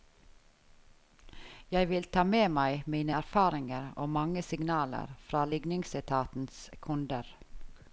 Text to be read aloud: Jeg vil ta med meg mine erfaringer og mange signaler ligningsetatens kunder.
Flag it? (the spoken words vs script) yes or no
yes